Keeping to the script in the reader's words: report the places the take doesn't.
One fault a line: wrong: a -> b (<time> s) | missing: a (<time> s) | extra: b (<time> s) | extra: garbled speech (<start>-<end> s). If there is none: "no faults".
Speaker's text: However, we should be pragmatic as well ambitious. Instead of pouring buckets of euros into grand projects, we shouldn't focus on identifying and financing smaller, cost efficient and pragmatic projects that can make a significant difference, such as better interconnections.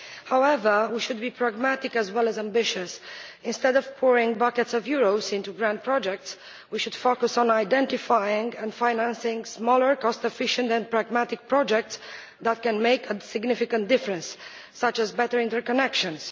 extra: as (2.3 s)
wrong: shouldn't -> should (6.8 s)